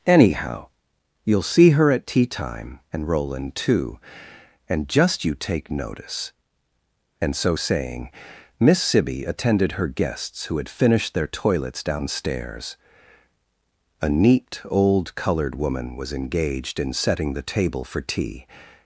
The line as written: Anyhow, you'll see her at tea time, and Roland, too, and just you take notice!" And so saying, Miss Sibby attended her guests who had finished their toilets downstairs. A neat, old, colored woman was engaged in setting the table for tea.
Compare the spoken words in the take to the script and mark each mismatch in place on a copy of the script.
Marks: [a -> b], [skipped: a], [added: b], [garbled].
Anyhow, you'll see her at tea time, and Roland, too, and just you take notice!" And so saying, Miss Sibby attended her guests who had finished their toilets downstairs. A neat, old, colored woman was engaged in setting the table for tea.